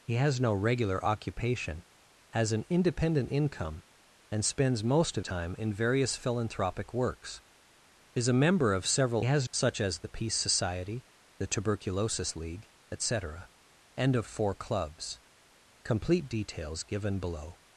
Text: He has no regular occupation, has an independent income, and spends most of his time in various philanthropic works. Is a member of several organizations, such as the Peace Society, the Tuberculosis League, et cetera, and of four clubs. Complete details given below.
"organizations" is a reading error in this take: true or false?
true